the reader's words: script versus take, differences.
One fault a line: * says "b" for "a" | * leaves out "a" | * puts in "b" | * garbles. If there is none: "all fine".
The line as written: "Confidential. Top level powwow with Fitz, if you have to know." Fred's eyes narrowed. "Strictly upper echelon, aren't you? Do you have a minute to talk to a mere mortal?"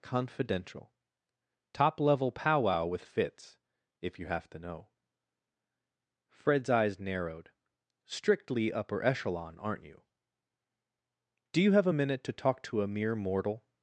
all fine